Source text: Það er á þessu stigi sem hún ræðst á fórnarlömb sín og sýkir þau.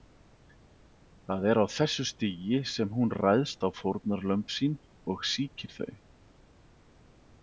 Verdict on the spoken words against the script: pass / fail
pass